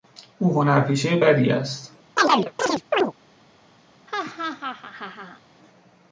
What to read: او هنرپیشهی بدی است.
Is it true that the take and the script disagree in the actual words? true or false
false